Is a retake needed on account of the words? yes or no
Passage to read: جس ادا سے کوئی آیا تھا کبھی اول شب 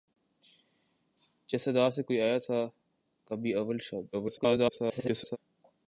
yes